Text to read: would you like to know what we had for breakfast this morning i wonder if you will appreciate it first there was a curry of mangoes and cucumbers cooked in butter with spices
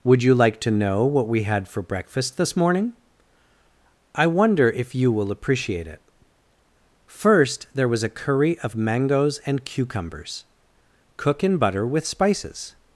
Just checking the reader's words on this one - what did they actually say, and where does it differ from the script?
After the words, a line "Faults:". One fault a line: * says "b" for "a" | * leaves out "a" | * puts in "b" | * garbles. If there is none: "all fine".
would you like to know what we had for breakfast this morning i wonder if you will appreciate it first there was a curry of mangoes and cucumbers cook in butter with spices
Faults:
* says "cook" for "cooked"